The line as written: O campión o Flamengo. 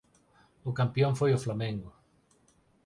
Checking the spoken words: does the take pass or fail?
fail